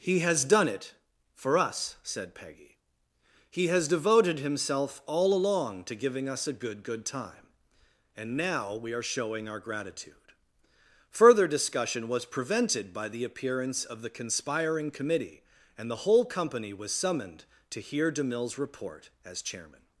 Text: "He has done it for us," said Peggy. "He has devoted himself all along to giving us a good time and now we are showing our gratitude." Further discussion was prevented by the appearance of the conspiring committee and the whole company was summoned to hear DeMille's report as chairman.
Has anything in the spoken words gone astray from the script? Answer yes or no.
yes